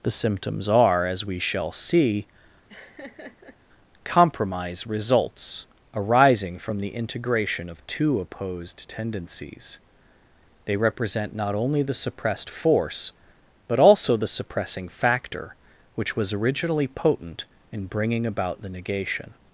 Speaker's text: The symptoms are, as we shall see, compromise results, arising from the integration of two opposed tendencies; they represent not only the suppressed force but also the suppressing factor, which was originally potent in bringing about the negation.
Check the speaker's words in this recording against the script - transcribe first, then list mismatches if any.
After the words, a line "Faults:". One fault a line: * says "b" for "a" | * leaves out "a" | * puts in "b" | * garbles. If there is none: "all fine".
The symptoms are, as we shall see, compromise results, arising from the integration of two opposed tendencies; they represent not only the suppressed force but also the suppressing factor, which was originally potent in bringing about the negation.
Faults:
all fine